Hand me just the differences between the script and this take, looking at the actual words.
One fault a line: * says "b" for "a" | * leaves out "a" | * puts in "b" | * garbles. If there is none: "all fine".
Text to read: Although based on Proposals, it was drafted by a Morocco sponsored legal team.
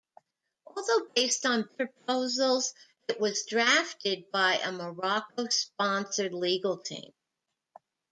all fine